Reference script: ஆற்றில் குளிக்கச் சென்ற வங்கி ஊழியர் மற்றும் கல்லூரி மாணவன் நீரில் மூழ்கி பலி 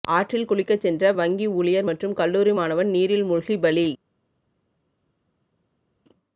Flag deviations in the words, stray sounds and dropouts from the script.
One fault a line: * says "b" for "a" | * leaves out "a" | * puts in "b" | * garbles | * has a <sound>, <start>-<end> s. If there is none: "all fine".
all fine